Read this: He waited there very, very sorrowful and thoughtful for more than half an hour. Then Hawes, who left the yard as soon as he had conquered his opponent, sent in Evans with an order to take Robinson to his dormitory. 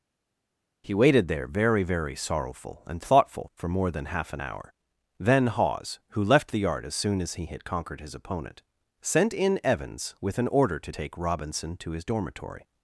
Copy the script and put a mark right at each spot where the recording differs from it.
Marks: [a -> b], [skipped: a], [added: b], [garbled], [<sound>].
He waited there very, very sorrowful and thoughtful for more than half an hour. Then Hawes, who left the yard as soon as he had conquered his opponent, sent in Evans with an order to take Robinson to his dormitory.